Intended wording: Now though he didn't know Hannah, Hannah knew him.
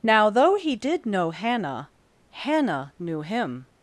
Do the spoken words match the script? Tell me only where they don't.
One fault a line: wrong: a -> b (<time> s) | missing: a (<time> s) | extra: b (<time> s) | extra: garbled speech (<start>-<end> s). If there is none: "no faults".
wrong: didn't -> did (0.7 s)